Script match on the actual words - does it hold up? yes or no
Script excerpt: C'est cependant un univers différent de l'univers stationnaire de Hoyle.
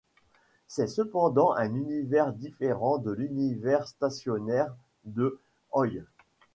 yes